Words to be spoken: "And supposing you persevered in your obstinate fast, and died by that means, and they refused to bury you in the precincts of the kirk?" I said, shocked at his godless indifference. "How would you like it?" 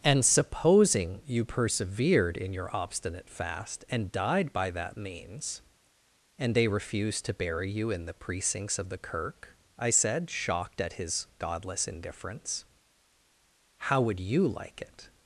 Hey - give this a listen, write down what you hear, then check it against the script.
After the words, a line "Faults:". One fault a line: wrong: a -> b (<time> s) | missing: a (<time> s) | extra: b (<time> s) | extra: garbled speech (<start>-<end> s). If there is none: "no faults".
"And supposing you persevered in your obstinate fast, and died by that means, and they refused to bury you in the precincts of the kirk?" I said, shocked at his godless indifference. "How would you like it?"
Faults:
no faults